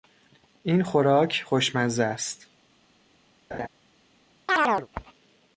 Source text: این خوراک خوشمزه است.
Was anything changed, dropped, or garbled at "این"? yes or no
no